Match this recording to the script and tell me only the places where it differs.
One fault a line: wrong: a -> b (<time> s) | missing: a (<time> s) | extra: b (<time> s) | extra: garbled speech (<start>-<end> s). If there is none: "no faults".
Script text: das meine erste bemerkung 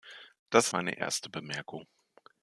no faults